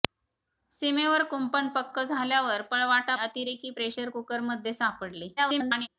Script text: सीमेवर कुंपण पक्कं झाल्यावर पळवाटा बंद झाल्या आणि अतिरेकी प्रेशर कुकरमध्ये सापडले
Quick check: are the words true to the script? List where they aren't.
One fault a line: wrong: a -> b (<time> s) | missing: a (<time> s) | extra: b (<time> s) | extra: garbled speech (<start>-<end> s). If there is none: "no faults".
missing: बंद झाल्या आणि (3.1 s)
extra: garbled speech (5.4-5.9 s)